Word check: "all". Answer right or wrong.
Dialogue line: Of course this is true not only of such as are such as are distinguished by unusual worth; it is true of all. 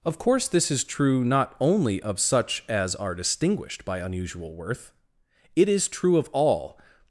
right